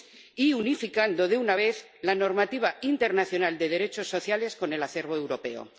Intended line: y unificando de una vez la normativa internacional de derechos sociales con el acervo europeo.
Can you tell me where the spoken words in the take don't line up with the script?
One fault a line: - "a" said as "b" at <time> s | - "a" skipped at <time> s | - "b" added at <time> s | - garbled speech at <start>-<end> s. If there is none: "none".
none